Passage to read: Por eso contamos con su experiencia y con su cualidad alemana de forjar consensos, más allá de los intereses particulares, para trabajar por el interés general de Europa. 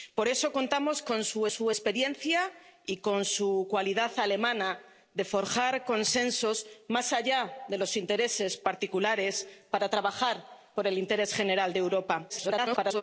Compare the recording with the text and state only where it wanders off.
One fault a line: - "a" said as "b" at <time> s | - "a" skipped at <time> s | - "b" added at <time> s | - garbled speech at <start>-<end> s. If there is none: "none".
- "su" added at 1.5 s
- garbled speech at 12.3-13.0 s